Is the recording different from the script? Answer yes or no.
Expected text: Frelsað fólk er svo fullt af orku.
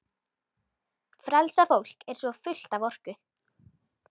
no